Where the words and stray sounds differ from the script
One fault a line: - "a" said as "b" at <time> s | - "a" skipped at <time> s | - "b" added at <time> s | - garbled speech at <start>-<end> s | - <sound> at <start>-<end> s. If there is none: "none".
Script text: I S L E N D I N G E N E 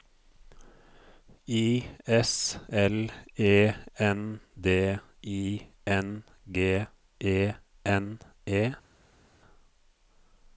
none